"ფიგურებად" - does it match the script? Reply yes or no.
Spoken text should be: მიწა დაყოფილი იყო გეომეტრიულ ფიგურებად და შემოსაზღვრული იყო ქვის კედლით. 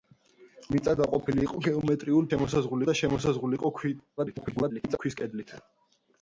no